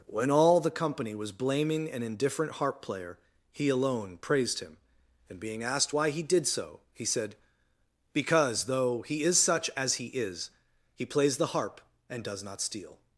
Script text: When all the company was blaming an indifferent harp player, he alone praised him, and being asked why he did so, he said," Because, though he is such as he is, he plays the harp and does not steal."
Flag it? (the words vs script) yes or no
no